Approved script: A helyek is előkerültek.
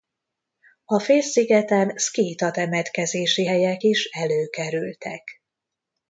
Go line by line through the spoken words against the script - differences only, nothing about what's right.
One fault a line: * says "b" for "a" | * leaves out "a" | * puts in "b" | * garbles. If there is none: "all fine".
* puts in "félszigeten szkíta temetkezési"